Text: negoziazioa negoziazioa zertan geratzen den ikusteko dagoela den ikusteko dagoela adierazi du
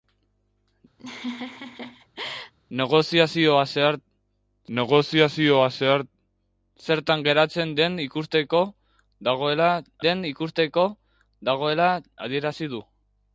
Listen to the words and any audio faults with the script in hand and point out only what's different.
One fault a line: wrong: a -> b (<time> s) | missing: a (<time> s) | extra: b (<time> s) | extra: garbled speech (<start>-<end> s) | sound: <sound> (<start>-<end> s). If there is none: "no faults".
sound: laugh (1.0-2.5 s)